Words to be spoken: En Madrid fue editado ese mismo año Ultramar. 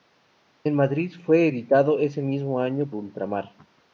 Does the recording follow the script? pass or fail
pass